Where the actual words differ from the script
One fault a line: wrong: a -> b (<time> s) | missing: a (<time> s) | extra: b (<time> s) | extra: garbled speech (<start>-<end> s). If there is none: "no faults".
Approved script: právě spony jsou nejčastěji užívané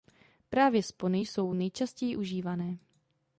no faults